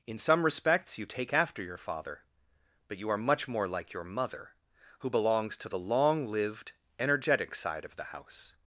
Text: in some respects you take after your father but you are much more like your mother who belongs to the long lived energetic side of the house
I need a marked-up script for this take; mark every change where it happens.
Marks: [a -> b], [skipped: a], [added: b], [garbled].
in some respects you take after your father but you are much more like your mother who belongs to the long lived energetic side of the house